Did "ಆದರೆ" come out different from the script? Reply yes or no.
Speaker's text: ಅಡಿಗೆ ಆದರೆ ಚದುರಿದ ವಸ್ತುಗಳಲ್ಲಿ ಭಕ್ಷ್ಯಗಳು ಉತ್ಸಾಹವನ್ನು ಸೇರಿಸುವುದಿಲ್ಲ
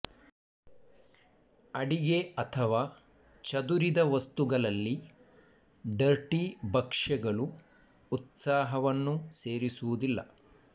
yes